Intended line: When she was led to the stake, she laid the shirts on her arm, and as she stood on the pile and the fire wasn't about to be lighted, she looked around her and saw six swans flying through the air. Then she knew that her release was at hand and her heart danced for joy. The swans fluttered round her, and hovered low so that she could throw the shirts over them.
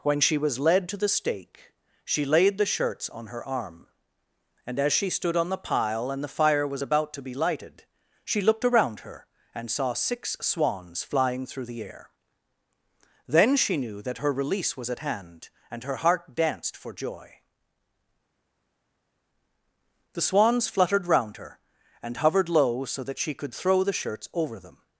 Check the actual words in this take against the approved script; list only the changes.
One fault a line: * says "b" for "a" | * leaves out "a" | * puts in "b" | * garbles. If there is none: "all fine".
* says "was" for "wasn't"